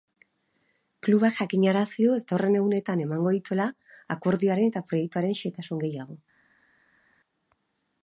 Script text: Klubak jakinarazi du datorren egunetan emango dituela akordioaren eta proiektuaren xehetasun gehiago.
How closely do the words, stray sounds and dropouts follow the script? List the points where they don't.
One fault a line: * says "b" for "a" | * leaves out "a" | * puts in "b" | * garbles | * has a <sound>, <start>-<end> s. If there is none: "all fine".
all fine